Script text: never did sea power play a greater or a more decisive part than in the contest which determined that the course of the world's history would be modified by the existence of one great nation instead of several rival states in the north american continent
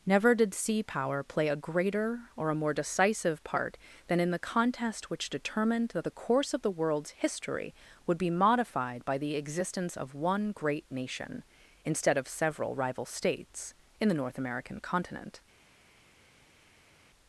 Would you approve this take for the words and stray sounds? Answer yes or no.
yes